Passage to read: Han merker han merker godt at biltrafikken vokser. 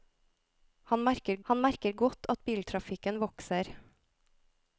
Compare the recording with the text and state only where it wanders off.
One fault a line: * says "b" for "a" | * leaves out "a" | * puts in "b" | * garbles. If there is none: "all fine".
all fine